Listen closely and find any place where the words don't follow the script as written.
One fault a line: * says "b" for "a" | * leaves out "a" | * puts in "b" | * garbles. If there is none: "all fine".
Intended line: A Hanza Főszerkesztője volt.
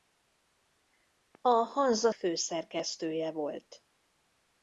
all fine